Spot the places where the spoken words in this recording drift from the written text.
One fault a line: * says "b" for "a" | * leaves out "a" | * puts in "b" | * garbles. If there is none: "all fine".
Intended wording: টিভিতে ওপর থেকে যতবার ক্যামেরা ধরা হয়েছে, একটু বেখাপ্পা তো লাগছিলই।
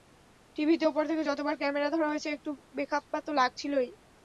all fine